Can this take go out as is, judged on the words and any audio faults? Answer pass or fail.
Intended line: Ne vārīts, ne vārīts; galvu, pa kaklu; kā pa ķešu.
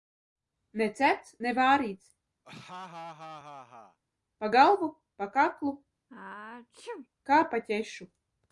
fail